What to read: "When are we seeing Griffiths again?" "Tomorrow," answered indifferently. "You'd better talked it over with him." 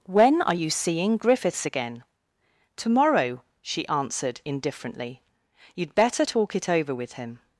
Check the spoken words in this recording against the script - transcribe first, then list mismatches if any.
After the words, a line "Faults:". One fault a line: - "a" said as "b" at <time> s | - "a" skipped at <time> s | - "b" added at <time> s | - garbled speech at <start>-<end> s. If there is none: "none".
"When are you seeing Griffiths again?" "Tomorrow," she answered indifferently. "You'd better talk it over with him."
Faults:
- "we" said as "you" at 0.5 s
- "she" added at 3.6 s
- "talked" said as "talk" at 6.2 s